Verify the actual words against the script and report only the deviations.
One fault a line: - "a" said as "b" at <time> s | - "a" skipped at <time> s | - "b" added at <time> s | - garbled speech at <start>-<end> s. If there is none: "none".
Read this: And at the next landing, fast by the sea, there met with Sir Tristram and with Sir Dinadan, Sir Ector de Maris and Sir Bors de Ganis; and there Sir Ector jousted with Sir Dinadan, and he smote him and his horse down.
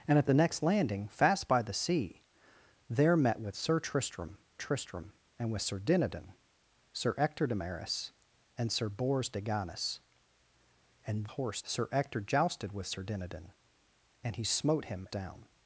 - "Tristram" added at 4.6 s
- "there" said as "horse" at 11.3 s
- "and his horse" skipped at 15.1 s